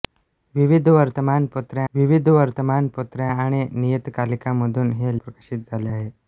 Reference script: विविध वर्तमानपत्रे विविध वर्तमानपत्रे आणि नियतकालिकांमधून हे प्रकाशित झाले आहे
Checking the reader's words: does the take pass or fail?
pass